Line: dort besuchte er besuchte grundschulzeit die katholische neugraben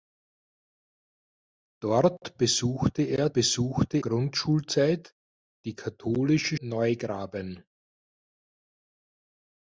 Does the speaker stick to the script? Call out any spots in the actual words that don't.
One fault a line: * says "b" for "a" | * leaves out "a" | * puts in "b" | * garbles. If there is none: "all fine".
all fine